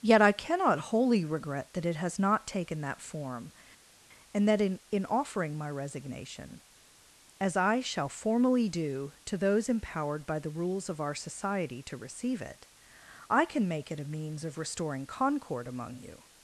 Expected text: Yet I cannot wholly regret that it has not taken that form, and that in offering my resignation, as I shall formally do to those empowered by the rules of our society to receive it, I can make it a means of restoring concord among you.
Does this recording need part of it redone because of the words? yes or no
yes